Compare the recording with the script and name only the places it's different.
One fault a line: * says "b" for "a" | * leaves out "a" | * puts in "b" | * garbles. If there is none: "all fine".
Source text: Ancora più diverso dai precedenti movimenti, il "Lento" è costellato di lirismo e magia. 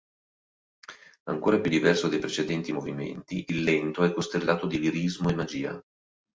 all fine